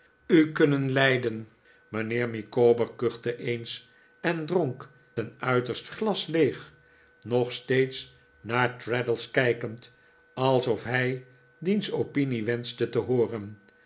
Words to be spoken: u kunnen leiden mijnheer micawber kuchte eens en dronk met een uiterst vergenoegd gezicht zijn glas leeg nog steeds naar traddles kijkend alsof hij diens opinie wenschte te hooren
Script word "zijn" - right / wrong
wrong